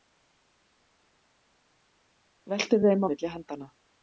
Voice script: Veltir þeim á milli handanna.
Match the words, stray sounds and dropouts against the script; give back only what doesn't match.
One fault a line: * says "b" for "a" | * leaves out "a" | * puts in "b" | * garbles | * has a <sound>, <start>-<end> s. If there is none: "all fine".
all fine